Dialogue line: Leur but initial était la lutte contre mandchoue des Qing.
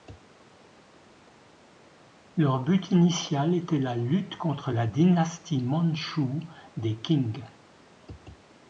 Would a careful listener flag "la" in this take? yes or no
no